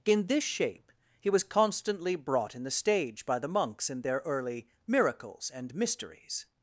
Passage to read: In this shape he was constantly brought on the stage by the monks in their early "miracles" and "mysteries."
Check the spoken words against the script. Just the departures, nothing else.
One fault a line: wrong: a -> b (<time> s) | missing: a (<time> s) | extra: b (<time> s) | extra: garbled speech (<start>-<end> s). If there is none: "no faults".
wrong: on -> in (2.5 s)